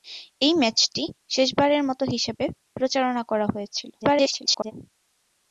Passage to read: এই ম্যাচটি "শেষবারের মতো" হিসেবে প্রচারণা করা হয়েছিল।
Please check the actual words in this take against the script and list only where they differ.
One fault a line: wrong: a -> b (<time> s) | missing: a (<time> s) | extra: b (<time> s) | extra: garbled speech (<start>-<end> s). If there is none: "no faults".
extra: garbled speech (4.0-4.7 s)